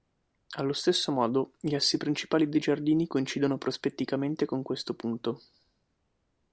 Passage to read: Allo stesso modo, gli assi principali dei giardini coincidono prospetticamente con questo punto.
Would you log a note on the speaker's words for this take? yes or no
no